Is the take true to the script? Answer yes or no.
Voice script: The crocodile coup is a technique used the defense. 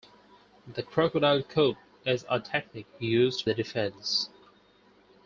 yes